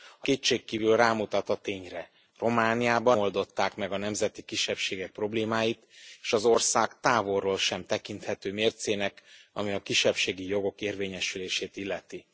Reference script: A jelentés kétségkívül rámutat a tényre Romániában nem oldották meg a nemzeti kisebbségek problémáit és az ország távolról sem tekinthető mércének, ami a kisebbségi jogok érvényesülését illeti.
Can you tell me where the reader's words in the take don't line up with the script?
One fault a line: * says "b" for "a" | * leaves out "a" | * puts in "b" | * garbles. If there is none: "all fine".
* leaves out "jelentés"
* leaves out "nem"